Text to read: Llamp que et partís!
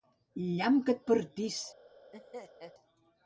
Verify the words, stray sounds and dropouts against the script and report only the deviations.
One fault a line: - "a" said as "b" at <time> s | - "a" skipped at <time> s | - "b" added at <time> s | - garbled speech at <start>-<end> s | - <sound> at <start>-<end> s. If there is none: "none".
- laugh at 2.1-2.7 s